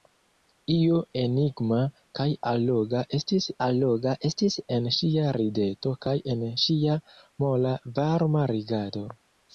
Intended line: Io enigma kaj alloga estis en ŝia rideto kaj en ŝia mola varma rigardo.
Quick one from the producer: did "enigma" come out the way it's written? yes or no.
yes